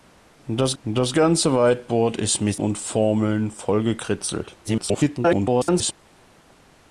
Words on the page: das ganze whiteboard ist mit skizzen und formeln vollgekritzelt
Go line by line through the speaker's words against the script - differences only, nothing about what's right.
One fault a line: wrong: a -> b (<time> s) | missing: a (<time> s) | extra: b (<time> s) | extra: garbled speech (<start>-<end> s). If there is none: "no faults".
extra: das (0.8 s)
missing: skizzen (2.6 s)
extra: garbled speech (4.6-5.9 s)